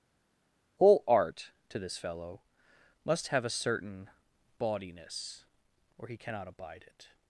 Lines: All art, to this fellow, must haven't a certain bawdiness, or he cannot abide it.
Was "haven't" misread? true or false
true